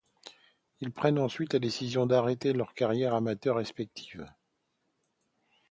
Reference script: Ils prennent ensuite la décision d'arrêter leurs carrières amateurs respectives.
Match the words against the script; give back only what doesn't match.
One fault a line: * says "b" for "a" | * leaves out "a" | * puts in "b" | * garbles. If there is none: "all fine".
all fine